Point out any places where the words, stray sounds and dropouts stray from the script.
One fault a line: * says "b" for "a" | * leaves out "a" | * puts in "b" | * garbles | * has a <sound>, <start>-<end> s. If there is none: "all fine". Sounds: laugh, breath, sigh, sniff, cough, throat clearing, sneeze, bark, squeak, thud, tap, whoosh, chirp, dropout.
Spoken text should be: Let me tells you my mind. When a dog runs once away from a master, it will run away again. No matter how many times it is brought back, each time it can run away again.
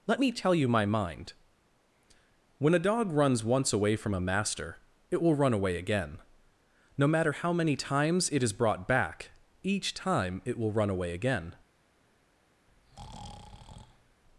* says "tell" for "tells"
* says "will" for "can"
* has a breath, 12.7-14.2 s